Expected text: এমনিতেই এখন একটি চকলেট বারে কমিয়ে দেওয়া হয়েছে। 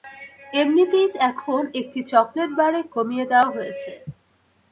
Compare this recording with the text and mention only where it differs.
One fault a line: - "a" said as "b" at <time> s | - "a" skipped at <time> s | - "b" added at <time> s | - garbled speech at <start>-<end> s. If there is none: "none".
none